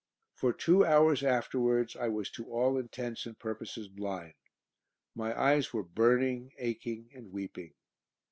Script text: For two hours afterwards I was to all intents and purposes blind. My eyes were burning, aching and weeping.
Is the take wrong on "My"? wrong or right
right